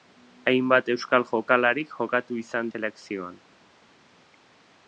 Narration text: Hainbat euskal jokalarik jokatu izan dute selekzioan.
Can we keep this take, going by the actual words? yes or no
no